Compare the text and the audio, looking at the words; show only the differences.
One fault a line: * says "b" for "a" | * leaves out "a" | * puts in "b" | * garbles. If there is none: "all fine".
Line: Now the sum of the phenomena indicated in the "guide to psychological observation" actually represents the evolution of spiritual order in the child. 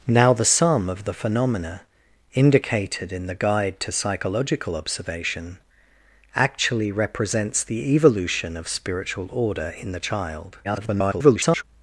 * garbles